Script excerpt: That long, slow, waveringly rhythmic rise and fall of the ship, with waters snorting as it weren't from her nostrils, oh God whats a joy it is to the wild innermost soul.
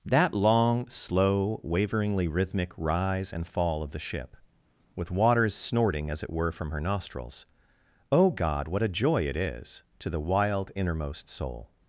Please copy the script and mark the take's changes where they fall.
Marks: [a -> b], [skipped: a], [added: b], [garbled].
That long, slow, waveringly rhythmic rise and fall of the ship, with waters snorting as it [weren't -> were] from her nostrils, oh God [whats -> what] a joy it is to the wild innermost soul.